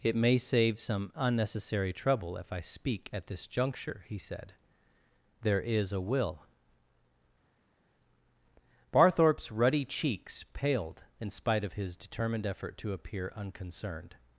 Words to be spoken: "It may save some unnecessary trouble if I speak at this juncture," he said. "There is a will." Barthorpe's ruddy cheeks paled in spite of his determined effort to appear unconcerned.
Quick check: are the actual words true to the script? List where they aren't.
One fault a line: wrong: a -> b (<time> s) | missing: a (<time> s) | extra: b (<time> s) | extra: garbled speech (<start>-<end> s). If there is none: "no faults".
no faults